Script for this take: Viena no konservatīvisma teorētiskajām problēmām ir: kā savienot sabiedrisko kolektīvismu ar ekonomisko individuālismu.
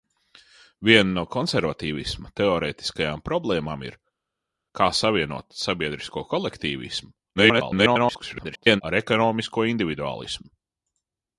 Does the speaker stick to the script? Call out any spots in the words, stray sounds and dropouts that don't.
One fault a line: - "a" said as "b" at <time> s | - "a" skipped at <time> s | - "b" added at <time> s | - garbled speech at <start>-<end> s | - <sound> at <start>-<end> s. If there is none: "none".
- garbled speech at 7.4-8.8 s